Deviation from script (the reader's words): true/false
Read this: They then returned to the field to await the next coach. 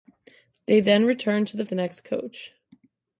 true